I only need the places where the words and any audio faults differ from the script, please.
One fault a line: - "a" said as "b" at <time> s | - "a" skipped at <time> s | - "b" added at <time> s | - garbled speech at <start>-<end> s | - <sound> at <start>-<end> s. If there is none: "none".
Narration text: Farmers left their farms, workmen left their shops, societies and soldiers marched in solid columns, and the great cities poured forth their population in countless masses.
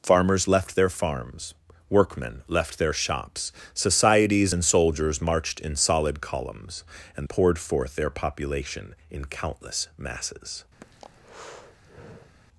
- "the great cities" skipped at 7.3 s
- breath at 10.8-12.4 s